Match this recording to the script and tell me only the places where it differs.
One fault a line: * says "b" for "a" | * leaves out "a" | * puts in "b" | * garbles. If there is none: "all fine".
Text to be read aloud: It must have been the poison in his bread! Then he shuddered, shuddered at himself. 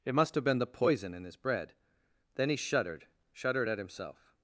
all fine